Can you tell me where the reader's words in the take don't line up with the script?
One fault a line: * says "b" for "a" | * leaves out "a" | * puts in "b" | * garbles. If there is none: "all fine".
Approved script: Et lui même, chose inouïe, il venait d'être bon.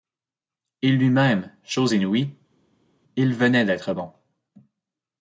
all fine